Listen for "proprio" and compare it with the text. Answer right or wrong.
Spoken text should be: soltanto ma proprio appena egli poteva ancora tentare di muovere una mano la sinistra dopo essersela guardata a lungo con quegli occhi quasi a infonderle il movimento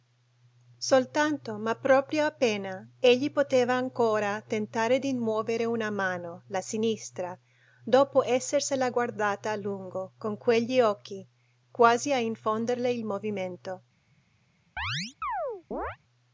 right